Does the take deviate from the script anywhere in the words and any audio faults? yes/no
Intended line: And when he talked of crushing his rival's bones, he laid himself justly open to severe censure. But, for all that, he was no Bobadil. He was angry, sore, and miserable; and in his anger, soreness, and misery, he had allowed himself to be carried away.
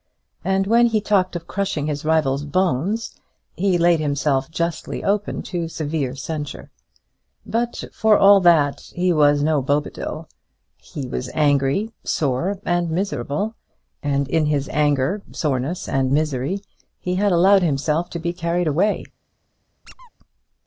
yes